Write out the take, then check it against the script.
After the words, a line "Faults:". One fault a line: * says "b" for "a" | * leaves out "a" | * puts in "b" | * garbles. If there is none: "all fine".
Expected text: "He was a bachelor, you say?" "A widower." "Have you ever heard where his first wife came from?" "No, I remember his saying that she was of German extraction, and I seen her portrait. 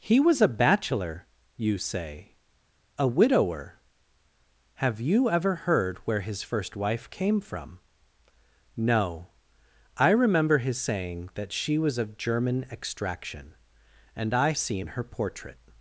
"He was a bachelor, you say?" "A widower." "Have you ever heard where his first wife came from?" "No, I remember his saying that she was of German extraction, and I seen her portrait.
Faults:
all fine